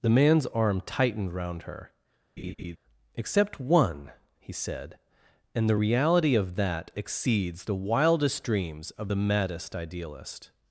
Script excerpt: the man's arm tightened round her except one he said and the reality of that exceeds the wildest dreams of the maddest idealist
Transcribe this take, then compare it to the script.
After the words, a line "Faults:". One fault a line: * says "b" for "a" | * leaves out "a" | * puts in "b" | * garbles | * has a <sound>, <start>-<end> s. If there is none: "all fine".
the man's arm tightened round her except one he said and the reality of that exceeds the wildest dreams of the maddest idealist
Faults:
* has a laugh, 2.4-2.8 s